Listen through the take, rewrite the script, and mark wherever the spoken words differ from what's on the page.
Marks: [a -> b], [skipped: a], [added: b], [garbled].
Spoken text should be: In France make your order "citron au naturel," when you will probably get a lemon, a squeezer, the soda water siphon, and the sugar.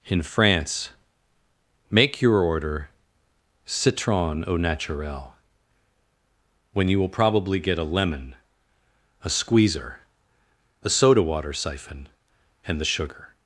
In France make your order "citron au naturel," when you will probably get a lemon, a squeezer, [the -> a] soda water siphon, and the sugar.